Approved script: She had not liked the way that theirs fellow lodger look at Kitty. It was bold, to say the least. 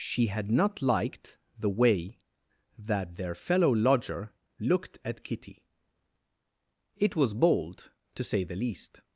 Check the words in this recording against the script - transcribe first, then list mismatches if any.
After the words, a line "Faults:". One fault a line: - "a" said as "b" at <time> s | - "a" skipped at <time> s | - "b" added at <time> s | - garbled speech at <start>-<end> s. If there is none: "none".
She had not liked the way that their fellow lodger looked at Kitty. It was bold, to say the least.
Faults:
- "theirs" said as "their" at 3.2 s
- "look" said as "looked" at 4.6 s